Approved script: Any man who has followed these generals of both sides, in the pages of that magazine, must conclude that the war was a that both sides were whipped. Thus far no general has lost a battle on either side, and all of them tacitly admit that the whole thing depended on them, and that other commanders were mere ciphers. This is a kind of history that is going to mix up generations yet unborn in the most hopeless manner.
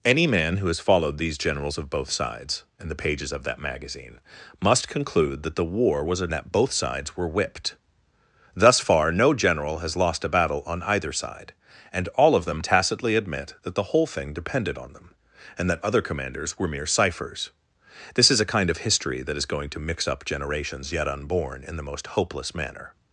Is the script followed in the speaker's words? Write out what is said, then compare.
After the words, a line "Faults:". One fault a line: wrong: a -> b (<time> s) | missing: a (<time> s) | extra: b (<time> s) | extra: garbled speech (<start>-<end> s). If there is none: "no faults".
Any man who has followed these generals of both sides, in the pages of that magazine, must conclude that the war was a that both sides were whipped. Thus far no general has lost a battle on either side, and all of them tacitly admit that the whole thing depended on them, and that other commanders were mere ciphers. This is a kind of history that is going to mix up generations yet unborn in the most hopeless manner.
Faults:
no faults